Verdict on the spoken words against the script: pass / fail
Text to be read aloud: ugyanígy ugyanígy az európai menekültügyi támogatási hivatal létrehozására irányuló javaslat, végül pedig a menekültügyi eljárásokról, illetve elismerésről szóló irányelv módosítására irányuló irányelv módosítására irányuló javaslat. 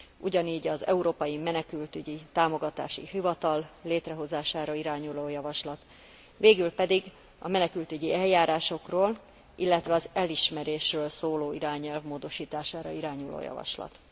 fail